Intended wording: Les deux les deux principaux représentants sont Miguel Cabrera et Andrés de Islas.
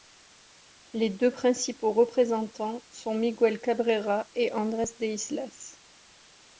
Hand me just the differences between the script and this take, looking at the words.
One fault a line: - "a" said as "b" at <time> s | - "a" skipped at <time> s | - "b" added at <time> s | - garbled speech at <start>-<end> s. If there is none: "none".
- "les deux" skipped at 1.3 s